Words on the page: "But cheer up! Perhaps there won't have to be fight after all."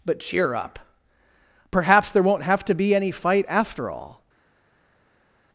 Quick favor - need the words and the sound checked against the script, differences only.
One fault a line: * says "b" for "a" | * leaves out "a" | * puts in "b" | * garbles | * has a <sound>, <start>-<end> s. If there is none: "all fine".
* puts in "any"